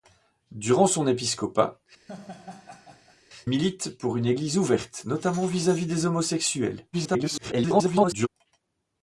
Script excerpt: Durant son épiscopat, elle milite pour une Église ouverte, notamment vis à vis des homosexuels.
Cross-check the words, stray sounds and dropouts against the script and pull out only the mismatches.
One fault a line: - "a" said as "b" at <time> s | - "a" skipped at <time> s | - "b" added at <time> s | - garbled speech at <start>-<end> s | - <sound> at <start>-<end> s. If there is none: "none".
- "elle" skipped at 1.8 s
- laugh at 2.1-3.2 s
- garbled speech at 6.9-8.3 s